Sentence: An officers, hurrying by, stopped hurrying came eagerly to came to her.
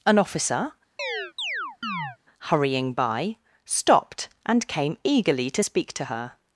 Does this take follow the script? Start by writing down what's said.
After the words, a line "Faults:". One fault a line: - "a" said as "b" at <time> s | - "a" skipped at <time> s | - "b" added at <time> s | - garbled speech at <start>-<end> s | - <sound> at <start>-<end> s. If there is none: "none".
An officer, hurrying by, stopped and came eagerly to speak to her.
Faults:
- "officers" said as "officer" at 0.2 s
- chirp at 1.0-2.2 s
- "hurrying" said as "and" at 4.5 s
- "came" said as "speak" at 5.6 s